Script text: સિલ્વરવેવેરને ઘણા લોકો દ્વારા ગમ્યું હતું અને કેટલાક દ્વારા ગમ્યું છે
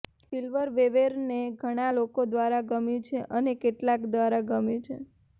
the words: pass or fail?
fail